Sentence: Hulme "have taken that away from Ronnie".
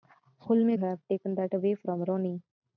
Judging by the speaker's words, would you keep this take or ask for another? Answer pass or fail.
pass